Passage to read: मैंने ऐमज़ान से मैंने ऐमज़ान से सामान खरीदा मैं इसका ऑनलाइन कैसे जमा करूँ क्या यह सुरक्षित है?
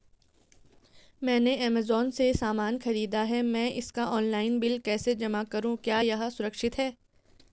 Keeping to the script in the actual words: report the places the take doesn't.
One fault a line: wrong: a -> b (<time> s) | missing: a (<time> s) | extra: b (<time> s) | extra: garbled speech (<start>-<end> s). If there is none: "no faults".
missing: मैंने ऐमज़ान से (2.3 s)
extra: है (3.2 s)
extra: बिल (4.6 s)